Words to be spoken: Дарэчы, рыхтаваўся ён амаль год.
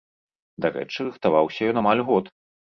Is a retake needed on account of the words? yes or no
no